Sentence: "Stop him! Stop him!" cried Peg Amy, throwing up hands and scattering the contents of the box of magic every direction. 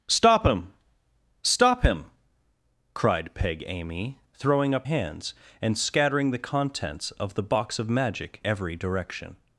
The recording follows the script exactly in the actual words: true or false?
true